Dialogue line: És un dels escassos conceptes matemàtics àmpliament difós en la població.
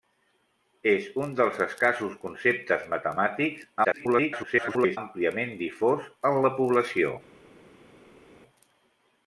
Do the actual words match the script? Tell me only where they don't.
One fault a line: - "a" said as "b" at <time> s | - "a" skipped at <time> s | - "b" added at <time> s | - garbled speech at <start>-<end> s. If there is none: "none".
- garbled speech at 3.8-5.0 s